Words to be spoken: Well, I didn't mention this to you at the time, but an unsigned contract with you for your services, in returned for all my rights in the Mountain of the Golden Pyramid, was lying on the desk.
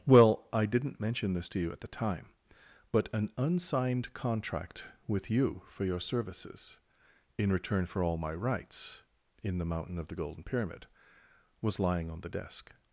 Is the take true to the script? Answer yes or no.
no